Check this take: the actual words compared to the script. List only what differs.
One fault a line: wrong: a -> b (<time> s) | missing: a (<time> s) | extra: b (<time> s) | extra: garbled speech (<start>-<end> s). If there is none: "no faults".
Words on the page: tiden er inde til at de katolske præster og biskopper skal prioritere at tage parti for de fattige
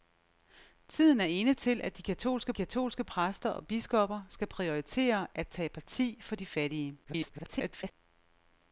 extra: katolske (2.5 s)
extra: garbled speech (7.0-7.9 s)